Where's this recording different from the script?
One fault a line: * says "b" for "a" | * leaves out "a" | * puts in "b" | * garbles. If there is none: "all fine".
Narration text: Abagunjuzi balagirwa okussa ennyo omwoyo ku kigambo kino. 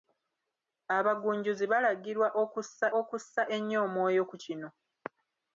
* puts in "okussa"
* leaves out "kigambo"